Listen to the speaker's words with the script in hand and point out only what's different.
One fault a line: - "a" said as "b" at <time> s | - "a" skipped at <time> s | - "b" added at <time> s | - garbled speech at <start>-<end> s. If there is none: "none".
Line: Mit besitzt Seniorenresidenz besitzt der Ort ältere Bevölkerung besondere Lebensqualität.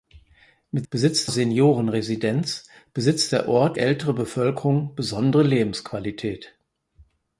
none